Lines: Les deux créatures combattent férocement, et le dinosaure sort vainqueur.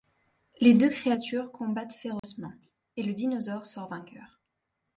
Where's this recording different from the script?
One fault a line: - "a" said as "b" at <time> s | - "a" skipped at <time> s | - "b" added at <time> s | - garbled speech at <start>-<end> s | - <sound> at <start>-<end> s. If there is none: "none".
- dropout at 2.2-2.2 s